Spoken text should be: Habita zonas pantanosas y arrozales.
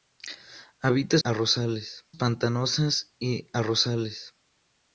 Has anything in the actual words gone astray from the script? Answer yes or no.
yes